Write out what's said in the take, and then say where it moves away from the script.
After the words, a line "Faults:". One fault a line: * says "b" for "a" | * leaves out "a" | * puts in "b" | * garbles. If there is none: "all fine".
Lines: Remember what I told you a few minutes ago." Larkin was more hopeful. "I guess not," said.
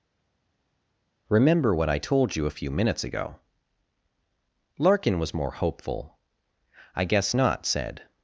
Remember what I told you a few minutes ago." Larkin was more hopeful. "I guess not," said.
Faults:
all fine